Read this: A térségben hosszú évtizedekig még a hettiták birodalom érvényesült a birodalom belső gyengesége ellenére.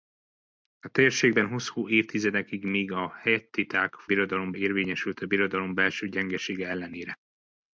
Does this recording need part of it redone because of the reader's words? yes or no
no